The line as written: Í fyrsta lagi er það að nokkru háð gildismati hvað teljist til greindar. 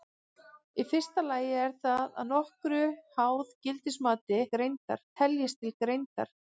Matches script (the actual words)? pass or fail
fail